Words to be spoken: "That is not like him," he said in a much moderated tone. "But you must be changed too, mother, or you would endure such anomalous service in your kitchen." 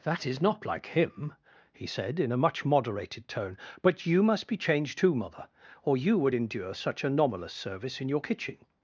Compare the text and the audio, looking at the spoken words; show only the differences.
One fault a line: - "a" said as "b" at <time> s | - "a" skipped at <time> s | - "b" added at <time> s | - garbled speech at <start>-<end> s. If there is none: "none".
none